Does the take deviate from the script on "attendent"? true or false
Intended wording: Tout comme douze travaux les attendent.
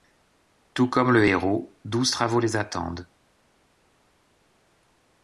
false